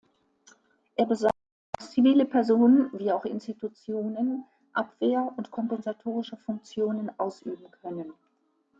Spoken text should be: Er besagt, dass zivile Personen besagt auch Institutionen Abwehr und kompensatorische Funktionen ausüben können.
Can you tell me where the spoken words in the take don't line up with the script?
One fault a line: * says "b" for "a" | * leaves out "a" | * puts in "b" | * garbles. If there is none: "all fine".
* says "wie" for "besagt"